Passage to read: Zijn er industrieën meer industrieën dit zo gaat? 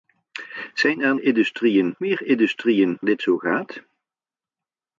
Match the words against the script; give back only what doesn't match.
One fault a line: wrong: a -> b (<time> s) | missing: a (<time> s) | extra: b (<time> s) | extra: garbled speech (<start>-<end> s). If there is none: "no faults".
no faults